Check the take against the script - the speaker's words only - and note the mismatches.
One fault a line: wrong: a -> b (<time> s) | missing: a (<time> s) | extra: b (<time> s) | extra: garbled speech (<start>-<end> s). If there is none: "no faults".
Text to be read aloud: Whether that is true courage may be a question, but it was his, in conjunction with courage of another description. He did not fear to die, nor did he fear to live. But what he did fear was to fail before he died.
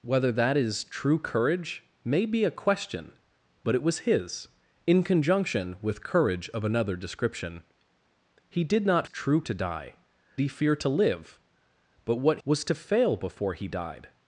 wrong: fear -> true (9.1 s)
missing: nor did (10.0 s)
missing: he did fear (12.4 s)